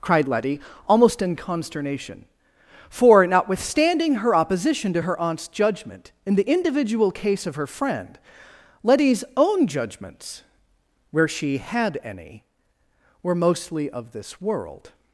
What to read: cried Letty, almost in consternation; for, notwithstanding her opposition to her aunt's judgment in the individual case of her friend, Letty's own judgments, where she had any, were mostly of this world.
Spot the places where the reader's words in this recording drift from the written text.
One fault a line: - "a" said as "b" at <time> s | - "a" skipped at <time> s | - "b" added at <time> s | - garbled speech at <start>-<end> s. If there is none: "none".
none